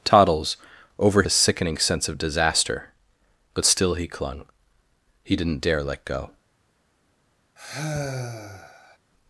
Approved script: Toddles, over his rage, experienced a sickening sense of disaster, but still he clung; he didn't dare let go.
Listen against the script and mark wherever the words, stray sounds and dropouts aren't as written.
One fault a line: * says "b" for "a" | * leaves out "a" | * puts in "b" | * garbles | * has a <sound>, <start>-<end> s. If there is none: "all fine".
* leaves out "his rage experienced"
* has a sigh, 7.6-9.0 s